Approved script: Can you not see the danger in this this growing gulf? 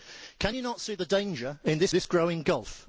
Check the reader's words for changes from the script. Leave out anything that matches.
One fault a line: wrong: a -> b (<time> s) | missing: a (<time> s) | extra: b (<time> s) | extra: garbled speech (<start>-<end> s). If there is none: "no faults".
no faults